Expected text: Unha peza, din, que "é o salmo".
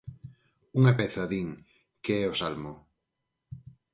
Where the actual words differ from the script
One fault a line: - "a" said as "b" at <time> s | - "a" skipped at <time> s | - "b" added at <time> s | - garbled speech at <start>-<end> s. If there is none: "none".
none